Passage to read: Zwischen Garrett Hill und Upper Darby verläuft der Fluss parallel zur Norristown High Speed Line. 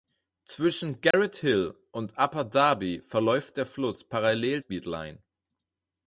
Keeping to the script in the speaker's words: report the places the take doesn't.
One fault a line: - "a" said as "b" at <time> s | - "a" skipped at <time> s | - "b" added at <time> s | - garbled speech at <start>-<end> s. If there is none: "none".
- "zur Norristown High" skipped at 4.6 s